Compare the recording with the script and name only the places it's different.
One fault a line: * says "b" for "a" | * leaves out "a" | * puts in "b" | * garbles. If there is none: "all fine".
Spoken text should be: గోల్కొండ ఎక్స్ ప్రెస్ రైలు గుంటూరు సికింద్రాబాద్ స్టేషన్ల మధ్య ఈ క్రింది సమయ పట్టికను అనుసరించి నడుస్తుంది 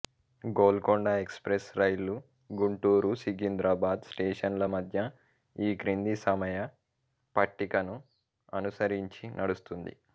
all fine